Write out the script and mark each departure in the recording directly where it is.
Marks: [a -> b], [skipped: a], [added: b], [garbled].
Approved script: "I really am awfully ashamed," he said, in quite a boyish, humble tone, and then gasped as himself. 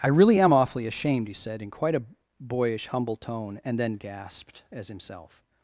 "I really am awfully ashamed," he said, in quite a boyish, humble tone, and then gasped as himself.